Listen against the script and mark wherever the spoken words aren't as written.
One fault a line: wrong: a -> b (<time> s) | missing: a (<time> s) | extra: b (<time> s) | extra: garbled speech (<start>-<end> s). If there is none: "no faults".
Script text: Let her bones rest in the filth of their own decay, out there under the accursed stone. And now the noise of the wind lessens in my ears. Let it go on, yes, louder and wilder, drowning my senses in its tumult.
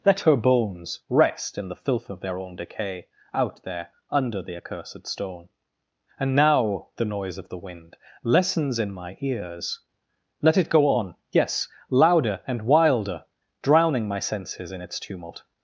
no faults